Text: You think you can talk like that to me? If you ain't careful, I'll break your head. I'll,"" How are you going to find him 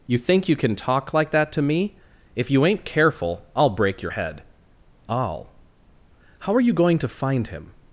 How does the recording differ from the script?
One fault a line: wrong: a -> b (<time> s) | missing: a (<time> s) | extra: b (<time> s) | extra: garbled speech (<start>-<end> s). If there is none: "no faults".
no faults